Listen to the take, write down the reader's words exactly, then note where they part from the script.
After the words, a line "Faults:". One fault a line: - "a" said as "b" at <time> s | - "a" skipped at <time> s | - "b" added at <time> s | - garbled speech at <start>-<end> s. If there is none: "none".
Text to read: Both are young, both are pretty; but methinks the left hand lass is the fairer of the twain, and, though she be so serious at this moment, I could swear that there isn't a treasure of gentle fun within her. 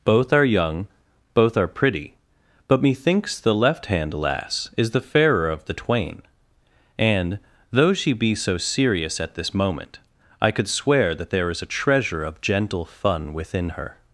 Both are young, both are pretty; but methinks the left hand lass is the fairer of the twain, and, though she be so serious at this moment, I could swear that there is a treasure of gentle fun within her.
Faults:
- "isn't" said as "is" at 11.5 s